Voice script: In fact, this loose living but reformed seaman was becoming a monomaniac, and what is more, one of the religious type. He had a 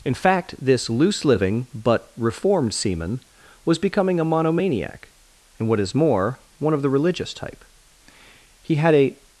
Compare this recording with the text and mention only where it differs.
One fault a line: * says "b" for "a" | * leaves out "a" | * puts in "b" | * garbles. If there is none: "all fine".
all fine